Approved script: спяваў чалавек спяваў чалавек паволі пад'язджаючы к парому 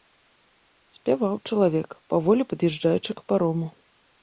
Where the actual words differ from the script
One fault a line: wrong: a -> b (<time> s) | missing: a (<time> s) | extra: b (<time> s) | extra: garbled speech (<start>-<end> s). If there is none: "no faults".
missing: спяваў чалавек (1.9 s)